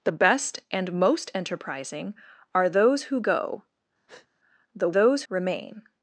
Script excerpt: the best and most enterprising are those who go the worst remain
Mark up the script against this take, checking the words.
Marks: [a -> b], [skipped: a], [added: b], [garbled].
the best and most enterprising are those who go the [worst -> those] remain